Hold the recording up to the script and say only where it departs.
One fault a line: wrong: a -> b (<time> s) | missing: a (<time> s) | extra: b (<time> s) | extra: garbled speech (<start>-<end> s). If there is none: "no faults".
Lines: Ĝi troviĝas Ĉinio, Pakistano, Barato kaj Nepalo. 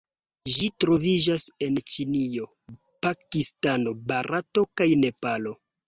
extra: en (1.7 s)